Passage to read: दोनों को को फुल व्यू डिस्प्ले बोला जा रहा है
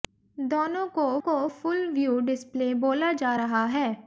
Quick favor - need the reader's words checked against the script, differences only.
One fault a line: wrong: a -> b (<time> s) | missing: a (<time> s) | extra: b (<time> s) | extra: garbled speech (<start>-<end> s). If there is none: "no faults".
no faults